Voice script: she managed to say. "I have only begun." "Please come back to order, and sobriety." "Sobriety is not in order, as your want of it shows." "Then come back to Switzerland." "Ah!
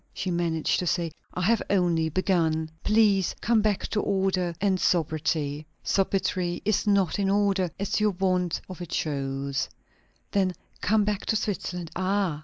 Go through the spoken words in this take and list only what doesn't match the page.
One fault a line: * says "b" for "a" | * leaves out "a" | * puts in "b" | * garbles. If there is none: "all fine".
all fine